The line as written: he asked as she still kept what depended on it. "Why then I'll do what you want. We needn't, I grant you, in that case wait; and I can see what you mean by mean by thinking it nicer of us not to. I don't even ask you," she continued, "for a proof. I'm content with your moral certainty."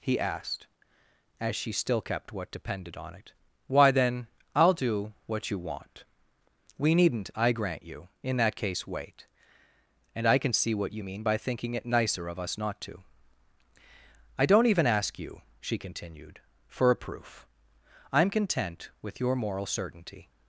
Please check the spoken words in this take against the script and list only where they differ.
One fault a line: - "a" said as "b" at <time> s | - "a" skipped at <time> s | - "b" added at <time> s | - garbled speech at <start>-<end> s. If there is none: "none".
- "mean by" skipped at 11.4 s